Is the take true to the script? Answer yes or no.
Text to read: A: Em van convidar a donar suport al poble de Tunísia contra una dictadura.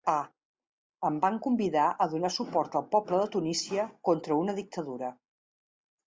yes